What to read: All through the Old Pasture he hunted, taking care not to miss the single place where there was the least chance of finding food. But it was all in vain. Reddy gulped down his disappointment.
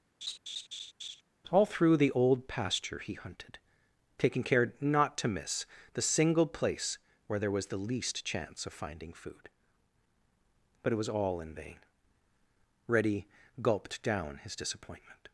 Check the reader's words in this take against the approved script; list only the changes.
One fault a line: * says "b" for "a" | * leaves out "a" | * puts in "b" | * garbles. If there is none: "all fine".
all fine